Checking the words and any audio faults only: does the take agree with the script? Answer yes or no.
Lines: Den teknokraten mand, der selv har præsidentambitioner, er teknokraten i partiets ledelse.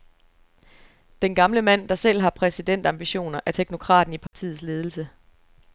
no